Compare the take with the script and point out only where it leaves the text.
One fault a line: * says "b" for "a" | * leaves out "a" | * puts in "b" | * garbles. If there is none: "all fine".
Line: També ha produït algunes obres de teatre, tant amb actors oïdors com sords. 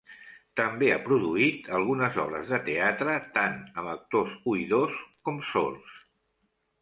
all fine